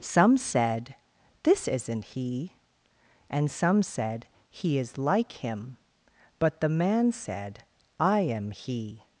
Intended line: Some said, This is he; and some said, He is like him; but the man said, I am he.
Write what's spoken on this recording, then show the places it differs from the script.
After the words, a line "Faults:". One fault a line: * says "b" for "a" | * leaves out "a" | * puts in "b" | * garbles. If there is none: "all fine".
Some said, This isn't he; and some said, He is like him; but the man said, I am he.
Faults:
* says "isn't" for "is"